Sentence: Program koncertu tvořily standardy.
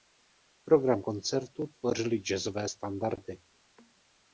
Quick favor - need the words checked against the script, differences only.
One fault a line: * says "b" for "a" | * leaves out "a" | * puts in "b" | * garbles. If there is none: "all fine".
* puts in "jazzové"